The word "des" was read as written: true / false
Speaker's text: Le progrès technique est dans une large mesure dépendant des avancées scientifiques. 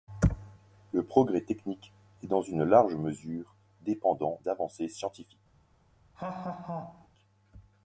false